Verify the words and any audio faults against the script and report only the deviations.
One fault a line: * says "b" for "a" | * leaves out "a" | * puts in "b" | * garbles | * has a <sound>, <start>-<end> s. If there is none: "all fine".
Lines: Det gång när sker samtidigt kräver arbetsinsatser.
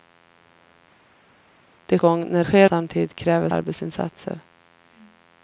all fine